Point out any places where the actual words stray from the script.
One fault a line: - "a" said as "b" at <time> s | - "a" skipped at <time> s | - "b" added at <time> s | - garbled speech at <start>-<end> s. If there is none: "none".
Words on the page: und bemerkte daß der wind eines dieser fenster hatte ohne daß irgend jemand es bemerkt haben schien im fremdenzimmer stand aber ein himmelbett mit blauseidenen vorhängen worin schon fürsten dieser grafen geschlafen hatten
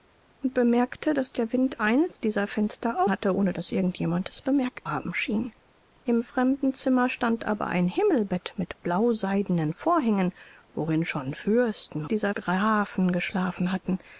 none